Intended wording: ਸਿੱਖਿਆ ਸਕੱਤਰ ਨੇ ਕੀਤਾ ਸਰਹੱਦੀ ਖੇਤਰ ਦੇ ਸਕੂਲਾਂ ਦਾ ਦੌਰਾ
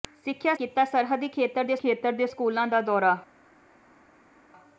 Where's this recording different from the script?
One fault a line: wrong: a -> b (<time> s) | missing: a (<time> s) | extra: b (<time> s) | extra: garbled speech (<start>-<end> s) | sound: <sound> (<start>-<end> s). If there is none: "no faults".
wrong: ਸਕੱਤਰ ਨੇ ਕੀਤਾ ਸਰਹੱਦੀ -> ਕੀਤਾ ਸਰਹੱਦੀ ਖੇਤਰ ਦੇ (0.5 s)